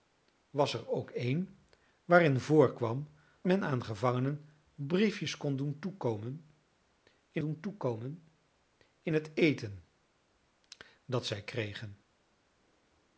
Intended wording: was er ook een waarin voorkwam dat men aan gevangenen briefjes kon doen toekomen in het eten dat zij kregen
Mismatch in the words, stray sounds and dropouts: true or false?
true